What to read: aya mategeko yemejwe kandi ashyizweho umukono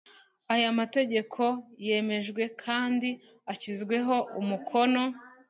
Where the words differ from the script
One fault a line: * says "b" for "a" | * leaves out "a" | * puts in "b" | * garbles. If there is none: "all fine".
all fine